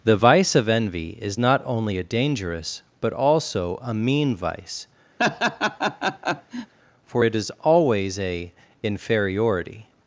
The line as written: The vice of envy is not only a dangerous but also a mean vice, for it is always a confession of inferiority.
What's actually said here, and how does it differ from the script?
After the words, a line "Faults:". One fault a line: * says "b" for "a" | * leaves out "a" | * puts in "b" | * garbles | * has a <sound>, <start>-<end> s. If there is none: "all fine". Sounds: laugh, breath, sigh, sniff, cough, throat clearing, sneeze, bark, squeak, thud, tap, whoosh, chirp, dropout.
The vice of envy is not only a dangerous but also a mean vice, for it is always a inferiority.
Faults:
* has a laugh, 5.2-6.7 s
* leaves out "confession of"